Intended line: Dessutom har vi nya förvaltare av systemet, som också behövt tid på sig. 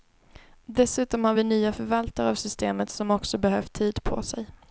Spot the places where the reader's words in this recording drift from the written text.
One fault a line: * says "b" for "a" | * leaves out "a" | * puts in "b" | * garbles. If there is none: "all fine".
all fine